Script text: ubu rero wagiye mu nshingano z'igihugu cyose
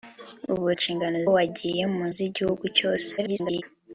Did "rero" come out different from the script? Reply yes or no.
yes